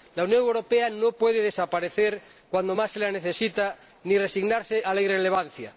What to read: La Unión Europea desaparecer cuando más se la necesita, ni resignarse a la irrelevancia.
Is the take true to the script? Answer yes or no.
no